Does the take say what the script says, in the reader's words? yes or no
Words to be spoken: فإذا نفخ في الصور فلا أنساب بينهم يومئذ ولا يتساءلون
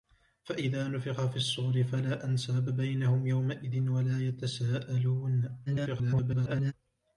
no